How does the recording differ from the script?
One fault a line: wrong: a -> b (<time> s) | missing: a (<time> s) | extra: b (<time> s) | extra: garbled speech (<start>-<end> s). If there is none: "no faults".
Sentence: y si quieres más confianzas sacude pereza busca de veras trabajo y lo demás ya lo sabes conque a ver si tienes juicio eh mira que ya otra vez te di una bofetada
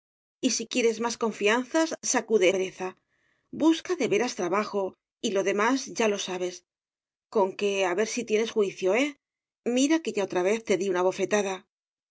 no faults